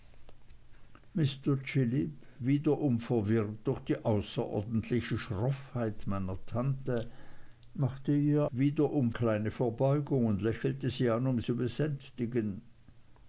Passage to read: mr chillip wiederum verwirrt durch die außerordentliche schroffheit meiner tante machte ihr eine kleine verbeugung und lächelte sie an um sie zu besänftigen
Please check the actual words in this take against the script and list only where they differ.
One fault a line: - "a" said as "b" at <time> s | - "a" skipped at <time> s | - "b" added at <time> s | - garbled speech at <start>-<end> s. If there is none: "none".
- "eine" said as "wiederum" at 8.5 s
- "sie" skipped at 11.4 s